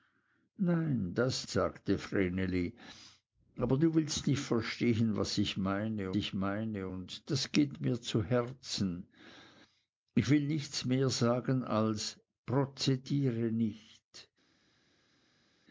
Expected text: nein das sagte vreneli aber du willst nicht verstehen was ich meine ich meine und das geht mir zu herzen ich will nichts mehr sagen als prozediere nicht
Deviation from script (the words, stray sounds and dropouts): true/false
false